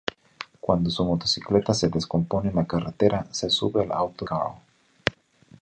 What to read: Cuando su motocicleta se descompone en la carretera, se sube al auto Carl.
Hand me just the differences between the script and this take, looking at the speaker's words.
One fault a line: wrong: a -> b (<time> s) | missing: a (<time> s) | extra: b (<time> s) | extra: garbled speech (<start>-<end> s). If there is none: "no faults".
no faults